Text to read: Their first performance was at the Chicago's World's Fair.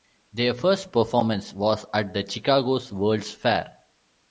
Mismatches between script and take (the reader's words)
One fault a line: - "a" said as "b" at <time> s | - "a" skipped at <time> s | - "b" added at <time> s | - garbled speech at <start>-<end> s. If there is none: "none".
none